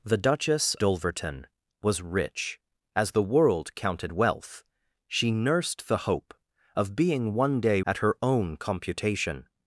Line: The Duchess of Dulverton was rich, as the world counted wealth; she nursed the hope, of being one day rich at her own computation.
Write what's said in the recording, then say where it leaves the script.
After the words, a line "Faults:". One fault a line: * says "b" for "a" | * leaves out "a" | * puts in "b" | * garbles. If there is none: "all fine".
The Duchess Dulverton was rich, as the world counted wealth; she nursed the hope, of being one day at her own computation.
Faults:
* leaves out "of"
* leaves out "rich"